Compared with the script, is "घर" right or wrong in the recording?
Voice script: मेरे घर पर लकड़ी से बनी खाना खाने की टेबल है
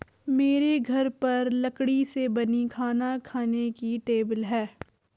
right